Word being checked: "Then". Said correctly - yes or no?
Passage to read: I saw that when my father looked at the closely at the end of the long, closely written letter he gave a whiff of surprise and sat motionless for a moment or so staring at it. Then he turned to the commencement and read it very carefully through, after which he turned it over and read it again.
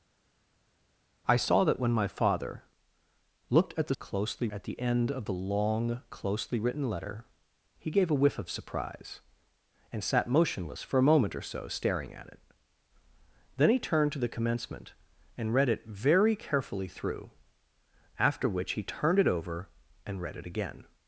yes